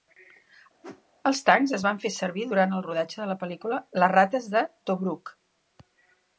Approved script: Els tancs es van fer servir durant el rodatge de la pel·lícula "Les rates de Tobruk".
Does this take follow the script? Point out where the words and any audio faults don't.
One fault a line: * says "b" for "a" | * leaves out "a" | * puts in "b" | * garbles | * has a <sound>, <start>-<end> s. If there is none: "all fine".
* has a whoosh, 0.8-1.0 s